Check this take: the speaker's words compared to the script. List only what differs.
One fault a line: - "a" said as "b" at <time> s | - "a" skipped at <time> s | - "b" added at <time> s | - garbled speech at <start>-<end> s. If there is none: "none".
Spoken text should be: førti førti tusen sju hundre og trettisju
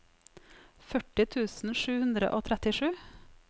- "førti" skipped at 1.3 s